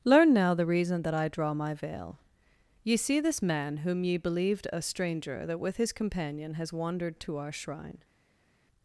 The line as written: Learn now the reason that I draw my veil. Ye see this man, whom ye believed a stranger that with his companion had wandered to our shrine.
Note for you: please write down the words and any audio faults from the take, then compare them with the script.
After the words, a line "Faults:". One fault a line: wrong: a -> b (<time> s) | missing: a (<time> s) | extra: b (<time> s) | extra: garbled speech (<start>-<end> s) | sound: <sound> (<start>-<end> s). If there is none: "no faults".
Learn now the reason that I draw my veil. Ye see this man, whom ye believed a stranger that with his companion has wandered to our shrine.
Faults:
wrong: had -> has (6.5 s)